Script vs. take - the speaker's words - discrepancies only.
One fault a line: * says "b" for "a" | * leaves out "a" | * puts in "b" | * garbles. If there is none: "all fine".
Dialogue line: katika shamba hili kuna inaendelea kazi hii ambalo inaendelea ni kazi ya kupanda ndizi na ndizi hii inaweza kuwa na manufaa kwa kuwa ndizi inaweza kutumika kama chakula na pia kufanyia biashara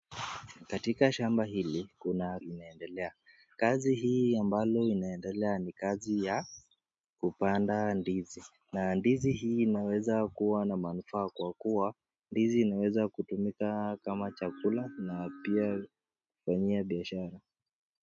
all fine